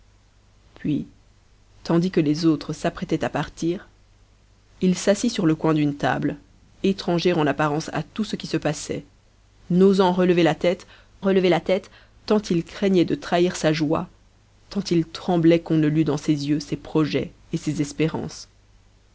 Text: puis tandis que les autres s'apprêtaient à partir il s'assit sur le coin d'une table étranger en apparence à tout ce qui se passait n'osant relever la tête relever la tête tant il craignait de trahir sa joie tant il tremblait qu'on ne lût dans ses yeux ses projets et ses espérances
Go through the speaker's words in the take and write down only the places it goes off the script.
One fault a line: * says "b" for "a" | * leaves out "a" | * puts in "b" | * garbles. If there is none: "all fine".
all fine